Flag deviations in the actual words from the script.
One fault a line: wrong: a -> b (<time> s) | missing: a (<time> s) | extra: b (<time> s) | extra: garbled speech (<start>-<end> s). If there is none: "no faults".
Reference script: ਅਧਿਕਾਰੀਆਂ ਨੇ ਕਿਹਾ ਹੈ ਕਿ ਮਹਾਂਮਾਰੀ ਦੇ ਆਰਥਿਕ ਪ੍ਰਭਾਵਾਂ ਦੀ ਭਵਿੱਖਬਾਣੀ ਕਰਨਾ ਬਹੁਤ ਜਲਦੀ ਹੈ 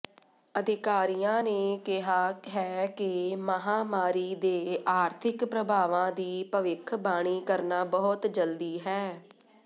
no faults